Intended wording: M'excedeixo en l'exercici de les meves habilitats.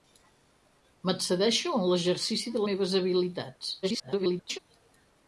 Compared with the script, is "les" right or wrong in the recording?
wrong